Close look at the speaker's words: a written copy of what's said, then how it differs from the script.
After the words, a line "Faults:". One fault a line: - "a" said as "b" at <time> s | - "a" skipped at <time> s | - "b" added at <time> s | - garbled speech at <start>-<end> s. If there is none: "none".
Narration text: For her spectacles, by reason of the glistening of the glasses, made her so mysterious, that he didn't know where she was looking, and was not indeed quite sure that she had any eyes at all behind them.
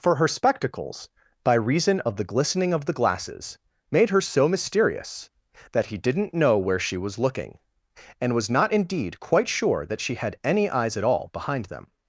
For her spectacles, by reason of the glistening of the glasses, made her so mysterious, that he didn't know where she was looking, and was not indeed quite sure that she had any eyes at all behind them.
Faults:
none